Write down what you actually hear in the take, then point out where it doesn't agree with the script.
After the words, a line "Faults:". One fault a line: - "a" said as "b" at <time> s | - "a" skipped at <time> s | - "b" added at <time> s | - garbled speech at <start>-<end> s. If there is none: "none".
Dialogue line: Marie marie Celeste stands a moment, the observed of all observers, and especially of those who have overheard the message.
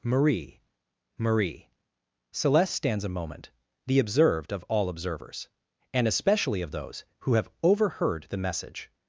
Marie marie Celeste stands a moment, the observed of all observers, and especially of those who have overheard the message.
Faults:
none